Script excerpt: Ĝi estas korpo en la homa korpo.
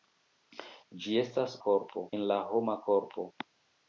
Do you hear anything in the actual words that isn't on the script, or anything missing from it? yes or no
no